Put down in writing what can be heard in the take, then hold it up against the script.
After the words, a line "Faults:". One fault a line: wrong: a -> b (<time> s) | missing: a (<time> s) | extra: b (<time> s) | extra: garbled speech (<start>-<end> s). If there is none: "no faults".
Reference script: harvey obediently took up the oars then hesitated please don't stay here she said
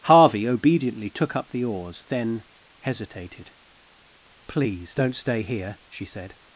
harvey obediently took up the oars then hesitated please don't stay here she said
Faults:
no faults